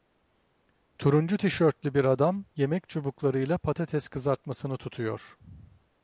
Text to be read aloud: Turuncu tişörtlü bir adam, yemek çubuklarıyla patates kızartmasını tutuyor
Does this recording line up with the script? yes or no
yes